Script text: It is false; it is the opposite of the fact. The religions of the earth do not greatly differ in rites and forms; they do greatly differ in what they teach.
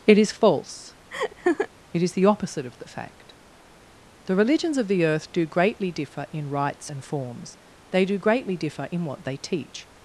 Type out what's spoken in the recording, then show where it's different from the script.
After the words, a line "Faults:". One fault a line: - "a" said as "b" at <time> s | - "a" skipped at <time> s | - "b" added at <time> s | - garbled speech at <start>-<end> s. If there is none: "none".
It is false; it is the opposite of the fact. The religions of the earth do greatly differ in rites and forms; they do greatly differ in what they teach.
Faults:
- "not" skipped at 5.4 s